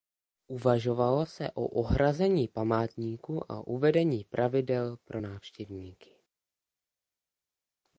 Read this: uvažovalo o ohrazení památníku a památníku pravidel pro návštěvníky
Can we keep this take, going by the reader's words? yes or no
no